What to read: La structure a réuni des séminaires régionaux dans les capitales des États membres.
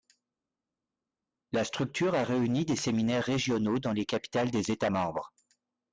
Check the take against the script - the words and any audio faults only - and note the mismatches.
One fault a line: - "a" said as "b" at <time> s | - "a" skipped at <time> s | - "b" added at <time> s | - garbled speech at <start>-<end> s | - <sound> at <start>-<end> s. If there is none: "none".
none